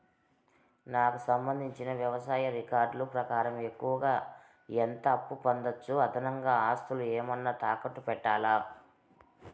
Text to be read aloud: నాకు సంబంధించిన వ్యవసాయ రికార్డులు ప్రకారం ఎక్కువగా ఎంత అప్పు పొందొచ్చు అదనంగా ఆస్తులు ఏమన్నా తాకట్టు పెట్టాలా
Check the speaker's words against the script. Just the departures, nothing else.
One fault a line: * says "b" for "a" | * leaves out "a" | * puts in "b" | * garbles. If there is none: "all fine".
all fine